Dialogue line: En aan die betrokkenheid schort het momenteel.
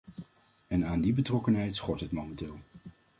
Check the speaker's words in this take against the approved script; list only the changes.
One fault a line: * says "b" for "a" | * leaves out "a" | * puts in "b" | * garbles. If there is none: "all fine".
all fine